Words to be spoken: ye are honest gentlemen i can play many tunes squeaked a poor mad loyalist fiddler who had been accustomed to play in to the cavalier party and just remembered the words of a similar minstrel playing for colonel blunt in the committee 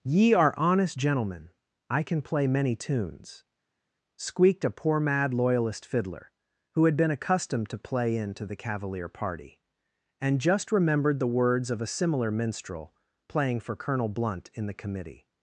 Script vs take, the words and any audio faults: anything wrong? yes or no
no